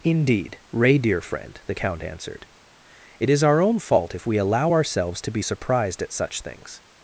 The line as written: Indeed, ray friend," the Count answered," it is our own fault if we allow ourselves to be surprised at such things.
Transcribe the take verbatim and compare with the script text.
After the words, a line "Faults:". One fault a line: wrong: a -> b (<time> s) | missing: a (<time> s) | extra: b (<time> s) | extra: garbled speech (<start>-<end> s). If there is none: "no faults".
Indeed, ray dear friend," the Count answered," it is our own fault if we allow ourselves to be surprised at such things.
Faults:
extra: dear (1.0 s)